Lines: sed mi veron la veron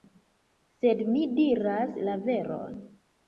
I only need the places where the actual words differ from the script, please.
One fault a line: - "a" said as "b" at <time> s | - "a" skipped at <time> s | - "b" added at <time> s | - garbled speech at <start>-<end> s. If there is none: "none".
- "veron" said as "diras" at 1.4 s